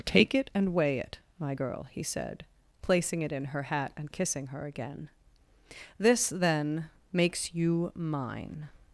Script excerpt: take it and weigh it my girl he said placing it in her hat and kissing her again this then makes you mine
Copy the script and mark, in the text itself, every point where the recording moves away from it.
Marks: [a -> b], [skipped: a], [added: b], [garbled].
take it and weigh it my girl he said placing it in her hat and kissing her again this then makes you mine